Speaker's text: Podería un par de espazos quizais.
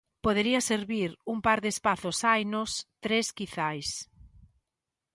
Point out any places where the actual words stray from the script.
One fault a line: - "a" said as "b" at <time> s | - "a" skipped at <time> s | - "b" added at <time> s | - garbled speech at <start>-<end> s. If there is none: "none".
- "servir" added at 0.7 s
- "hainos tres" added at 2.2 s